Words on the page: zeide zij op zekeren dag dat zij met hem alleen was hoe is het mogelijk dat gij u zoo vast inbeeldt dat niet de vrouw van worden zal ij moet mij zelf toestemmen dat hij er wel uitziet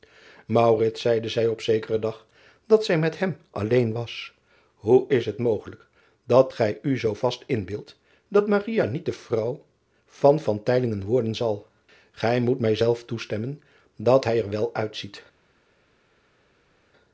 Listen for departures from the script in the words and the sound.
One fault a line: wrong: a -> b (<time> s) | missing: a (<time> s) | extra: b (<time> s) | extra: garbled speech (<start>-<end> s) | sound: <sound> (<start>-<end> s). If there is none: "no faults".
no faults